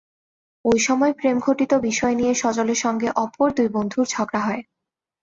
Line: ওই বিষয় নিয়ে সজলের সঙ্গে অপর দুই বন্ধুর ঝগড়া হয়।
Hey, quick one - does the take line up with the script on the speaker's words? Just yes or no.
no